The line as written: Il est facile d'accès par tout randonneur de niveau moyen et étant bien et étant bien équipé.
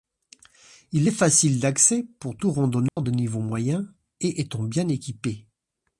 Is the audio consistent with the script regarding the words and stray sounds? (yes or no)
no